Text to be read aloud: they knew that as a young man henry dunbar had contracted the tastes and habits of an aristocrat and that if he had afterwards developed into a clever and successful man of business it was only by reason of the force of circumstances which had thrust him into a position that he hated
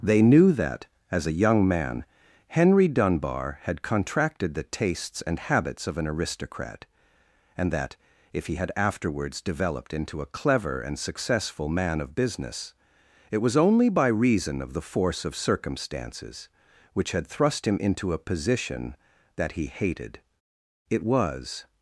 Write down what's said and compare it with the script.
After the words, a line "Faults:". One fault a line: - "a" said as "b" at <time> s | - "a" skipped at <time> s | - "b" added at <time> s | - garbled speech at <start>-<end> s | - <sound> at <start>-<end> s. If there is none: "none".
they knew that as a young man henry dunbar had contracted the tastes and habits of an aristocrat and that if he had afterwards developed into a clever and successful man of business it was only by reason of the force of circumstances which had thrust him into a position that he hated it was
Faults:
- "it was" added at 20.9 s